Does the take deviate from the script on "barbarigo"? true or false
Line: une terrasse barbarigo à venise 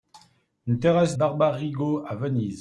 false